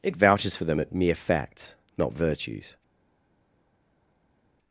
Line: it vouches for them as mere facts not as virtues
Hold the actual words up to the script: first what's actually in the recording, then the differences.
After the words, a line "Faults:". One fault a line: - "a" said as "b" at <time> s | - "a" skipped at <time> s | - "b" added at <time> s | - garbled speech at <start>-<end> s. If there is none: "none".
it vouches for them at mere facts not virtues
Faults:
- "as" said as "at" at 0.8 s
- "as" skipped at 2.1 s